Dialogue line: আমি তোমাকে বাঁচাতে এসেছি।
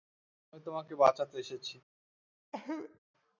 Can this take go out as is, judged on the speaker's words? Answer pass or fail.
pass